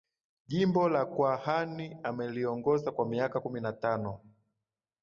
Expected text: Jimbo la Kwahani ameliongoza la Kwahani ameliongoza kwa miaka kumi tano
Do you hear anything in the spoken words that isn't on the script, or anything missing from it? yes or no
yes